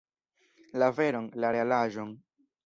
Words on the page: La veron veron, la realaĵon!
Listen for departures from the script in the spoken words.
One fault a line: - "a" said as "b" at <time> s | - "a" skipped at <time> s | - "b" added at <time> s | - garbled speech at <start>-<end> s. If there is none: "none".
- "veron" skipped at 1.3 s